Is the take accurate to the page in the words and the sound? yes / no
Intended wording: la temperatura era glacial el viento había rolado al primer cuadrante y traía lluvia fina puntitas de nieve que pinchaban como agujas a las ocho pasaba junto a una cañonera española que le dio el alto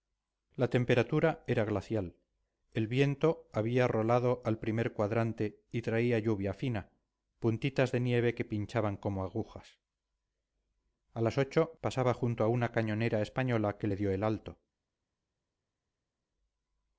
yes